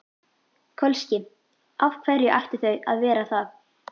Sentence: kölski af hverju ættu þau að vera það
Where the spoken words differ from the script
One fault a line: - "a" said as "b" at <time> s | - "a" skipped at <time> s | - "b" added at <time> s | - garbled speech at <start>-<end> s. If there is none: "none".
none